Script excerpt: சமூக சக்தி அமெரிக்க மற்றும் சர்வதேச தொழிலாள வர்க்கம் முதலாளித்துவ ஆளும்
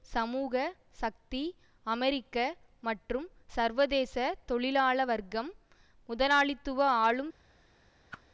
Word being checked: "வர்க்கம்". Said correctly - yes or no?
yes